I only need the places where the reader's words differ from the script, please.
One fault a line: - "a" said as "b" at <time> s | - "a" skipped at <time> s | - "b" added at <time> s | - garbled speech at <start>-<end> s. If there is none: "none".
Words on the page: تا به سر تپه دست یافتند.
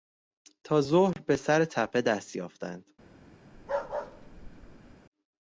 - "ظهر" added at 0.8 s